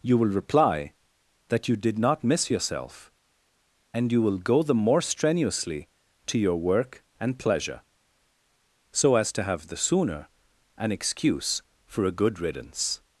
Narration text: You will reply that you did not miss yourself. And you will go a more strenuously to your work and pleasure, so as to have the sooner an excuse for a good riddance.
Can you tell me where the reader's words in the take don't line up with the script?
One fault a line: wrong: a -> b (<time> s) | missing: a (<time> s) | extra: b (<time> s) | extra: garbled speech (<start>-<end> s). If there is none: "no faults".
wrong: a -> the (4.6 s)